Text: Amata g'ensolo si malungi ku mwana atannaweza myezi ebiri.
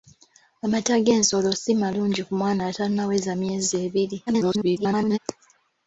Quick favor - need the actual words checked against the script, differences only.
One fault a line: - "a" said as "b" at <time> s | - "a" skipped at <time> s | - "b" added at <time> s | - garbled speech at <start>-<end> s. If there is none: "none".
- garbled speech at 4.3-5.2 s